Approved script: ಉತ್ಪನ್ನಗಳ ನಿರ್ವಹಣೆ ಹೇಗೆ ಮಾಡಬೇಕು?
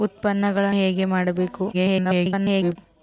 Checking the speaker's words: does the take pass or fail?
fail